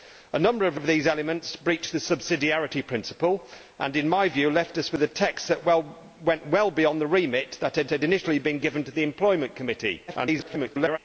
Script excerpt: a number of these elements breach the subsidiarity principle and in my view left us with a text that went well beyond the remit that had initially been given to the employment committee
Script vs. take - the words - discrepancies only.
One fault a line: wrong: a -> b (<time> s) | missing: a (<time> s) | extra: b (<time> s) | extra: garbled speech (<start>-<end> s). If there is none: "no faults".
extra: of (0.7 s)
extra: had (7.9 s)
extra: garbled speech (10.1-11.0 s)